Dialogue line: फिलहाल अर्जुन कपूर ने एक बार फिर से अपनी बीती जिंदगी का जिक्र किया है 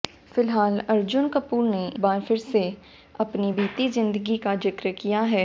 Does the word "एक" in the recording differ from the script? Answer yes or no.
yes